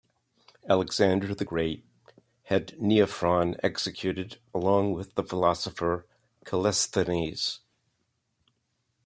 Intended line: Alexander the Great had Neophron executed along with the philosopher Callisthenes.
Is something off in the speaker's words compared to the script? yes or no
no